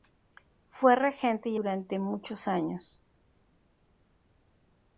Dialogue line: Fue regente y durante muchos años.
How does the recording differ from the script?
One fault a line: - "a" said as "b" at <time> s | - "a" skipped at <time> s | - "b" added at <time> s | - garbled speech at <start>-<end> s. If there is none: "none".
none